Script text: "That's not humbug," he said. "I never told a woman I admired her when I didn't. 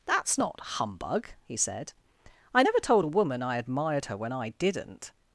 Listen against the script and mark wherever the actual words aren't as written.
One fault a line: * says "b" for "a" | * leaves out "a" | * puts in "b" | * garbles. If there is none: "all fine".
all fine